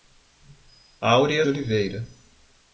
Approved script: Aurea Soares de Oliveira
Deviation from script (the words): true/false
true